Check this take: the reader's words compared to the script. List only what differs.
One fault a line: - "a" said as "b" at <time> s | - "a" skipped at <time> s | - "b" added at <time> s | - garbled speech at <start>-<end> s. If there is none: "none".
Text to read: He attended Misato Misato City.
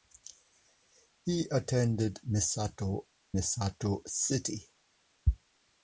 none